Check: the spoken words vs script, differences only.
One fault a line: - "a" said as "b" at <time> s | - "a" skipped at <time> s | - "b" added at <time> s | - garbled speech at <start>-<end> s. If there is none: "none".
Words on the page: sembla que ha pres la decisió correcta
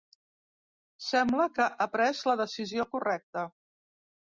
none